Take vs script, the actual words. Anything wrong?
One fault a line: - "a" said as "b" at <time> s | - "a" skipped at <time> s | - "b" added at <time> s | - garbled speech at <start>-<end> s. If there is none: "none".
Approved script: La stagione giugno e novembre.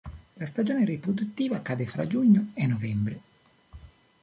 - "riproduttiva cade fra" added at 0.8 s